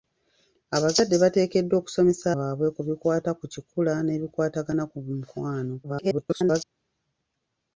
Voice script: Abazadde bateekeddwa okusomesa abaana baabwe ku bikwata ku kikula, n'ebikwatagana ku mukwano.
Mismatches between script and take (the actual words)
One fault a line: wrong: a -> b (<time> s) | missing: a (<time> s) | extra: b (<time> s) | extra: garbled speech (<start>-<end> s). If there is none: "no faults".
missing: abaana (2.2 s)
extra: garbled speech (5.8-6.6 s)